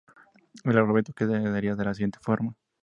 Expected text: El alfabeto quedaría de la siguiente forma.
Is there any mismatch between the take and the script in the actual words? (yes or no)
no